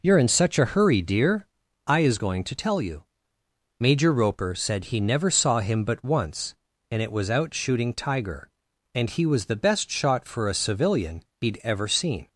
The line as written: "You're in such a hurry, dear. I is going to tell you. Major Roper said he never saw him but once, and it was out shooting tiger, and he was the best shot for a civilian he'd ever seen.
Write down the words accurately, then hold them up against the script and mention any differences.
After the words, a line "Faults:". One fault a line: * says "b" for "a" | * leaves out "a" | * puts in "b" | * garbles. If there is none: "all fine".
"You're in such a hurry, dear. I is going to tell you. Major Roper said he never saw him but once, and it was out shooting tiger, and he was the best shot for a civilian he'd ever seen.
Faults:
all fine